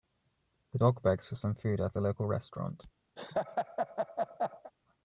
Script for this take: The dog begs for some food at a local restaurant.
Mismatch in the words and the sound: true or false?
true